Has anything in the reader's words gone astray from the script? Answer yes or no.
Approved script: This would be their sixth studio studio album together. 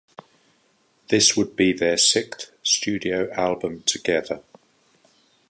yes